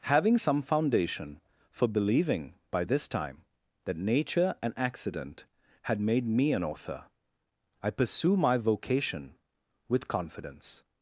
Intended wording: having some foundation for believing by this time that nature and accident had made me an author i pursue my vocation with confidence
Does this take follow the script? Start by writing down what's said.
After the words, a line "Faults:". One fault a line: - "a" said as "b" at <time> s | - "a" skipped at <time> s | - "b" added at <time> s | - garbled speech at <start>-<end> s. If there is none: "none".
having some foundation for believing by this time that nature and accident had made me an author i pursue my vocation with confidence
Faults:
none